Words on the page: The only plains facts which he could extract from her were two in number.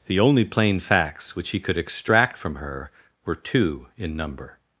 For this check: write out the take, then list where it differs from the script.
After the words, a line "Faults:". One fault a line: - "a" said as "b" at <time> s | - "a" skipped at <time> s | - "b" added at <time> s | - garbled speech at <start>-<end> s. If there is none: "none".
The only plain facts which he could extract from her were two in number.
Faults:
- "plains" said as "plain" at 0.5 s